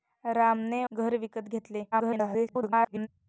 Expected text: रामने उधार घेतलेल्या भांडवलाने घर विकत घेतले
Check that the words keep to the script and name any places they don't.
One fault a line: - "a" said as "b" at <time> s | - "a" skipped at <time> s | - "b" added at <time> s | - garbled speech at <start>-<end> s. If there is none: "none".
- "उधार घेतलेल्या भांडवलाने" skipped at 0.8 s
- garbled speech at 1.9-3.1 s